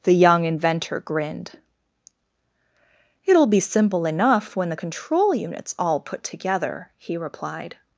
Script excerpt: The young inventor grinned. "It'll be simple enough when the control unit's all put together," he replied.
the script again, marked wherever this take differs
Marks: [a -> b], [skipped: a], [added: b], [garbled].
The young inventor grinned. "It'll be simple enough when the control unit's all put together," he replied.